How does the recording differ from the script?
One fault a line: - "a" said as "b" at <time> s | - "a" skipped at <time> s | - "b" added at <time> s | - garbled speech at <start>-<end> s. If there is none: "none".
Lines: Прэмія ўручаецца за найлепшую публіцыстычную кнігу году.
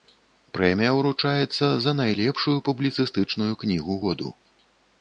none